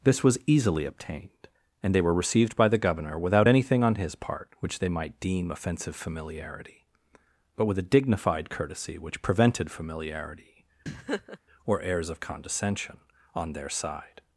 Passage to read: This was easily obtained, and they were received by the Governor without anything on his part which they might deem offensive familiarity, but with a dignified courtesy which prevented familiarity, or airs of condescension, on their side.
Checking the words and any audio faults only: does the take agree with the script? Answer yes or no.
no